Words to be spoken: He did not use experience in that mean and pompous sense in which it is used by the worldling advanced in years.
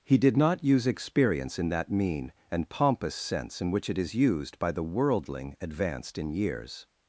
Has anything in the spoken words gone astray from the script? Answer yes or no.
no